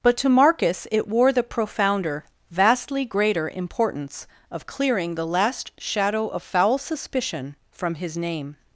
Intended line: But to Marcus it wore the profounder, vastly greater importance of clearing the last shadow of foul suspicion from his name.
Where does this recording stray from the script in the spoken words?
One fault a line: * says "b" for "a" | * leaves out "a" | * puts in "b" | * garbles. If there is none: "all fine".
all fine